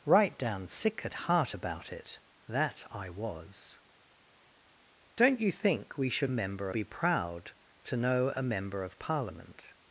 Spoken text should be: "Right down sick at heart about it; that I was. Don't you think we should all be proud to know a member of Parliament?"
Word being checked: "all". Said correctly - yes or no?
no